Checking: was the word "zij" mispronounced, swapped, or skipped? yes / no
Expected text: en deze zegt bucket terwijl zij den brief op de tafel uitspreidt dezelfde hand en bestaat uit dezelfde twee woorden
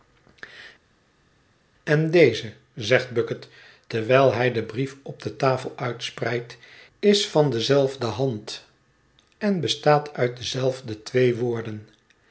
yes